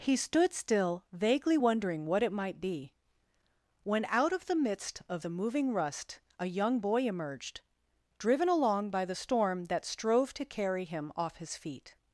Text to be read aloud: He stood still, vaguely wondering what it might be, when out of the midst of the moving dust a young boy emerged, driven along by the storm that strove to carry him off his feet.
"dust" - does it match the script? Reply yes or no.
no